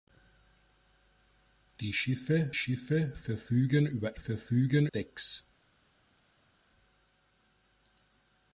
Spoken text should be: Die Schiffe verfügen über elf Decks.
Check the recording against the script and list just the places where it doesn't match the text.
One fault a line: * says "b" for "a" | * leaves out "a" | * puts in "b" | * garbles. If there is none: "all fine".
* puts in "Schiffe"
* says "verfügen" for "elf"